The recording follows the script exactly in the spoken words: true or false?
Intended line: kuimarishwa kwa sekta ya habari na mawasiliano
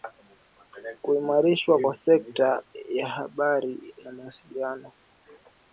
true